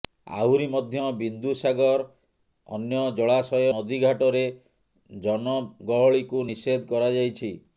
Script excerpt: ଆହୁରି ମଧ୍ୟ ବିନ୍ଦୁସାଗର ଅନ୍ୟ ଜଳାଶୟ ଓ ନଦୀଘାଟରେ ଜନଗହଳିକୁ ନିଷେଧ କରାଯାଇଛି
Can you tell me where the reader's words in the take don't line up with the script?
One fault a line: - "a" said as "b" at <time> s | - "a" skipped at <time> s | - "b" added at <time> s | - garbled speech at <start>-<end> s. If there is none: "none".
- "ଓ" skipped at 3.7 s